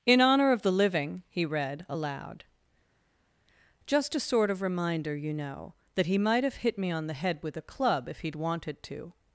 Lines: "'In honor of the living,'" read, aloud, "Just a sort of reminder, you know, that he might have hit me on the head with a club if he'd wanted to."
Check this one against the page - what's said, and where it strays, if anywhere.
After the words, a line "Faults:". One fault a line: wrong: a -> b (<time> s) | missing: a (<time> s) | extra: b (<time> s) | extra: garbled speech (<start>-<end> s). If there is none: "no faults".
"'In honor of the living,'" he read, aloud, "Just a sort of reminder, you know, that he might have hit me on the head with a club if he'd wanted to."
Faults:
extra: he (1.3 s)